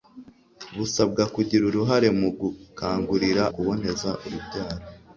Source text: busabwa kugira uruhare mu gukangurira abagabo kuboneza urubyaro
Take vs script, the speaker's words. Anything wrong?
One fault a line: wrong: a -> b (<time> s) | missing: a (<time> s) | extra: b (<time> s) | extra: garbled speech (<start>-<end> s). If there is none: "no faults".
missing: abagabo (3.4 s)